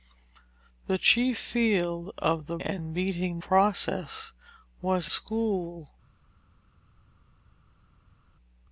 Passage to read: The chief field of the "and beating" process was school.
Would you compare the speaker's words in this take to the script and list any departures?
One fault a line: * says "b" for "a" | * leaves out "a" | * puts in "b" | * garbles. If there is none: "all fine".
all fine